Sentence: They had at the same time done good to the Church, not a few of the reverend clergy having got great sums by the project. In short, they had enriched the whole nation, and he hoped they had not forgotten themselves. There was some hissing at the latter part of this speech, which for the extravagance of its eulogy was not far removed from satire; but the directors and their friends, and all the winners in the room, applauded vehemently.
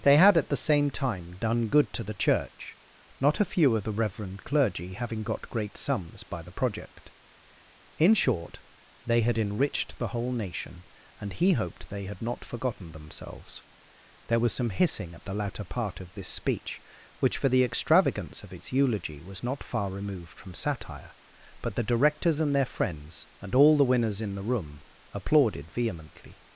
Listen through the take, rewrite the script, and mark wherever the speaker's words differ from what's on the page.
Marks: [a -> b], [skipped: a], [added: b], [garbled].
They had at the same time done good to the Church, not a few of the reverend clergy having got great sums by the project. In short, they had enriched the whole nation, and he hoped they had not forgotten themselves. There was some hissing at the latter part of this speech, which for the extravagance of its eulogy was not far removed from satire; but the directors and their friends, and all the winners in the room, applauded vehemently.